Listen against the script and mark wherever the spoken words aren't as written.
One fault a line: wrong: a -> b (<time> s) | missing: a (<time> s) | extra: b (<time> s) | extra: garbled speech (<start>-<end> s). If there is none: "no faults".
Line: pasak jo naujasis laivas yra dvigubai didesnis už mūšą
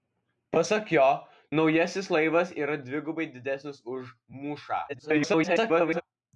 extra: garbled speech (4.9-6.0 s)